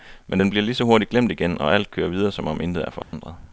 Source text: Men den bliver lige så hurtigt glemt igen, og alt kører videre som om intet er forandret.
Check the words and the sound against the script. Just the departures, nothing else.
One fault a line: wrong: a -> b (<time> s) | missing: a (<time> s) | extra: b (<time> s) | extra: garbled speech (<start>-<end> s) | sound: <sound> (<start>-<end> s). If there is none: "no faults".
sound: dropout (3.0-3.1 s)